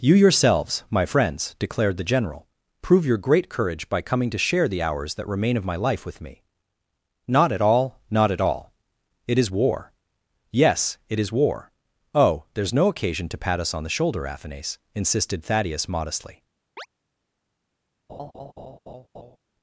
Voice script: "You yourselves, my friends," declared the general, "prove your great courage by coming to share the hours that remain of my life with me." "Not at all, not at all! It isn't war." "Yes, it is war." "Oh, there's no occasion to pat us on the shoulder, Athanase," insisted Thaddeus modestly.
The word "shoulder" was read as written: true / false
true